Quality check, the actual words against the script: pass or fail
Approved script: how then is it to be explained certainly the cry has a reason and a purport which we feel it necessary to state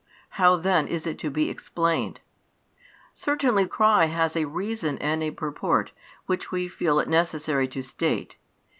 fail